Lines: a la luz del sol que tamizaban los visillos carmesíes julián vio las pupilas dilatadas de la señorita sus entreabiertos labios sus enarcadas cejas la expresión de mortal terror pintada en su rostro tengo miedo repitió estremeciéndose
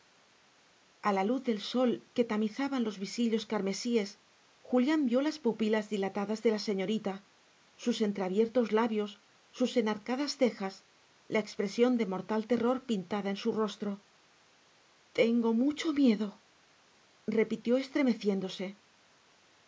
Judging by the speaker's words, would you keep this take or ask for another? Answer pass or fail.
fail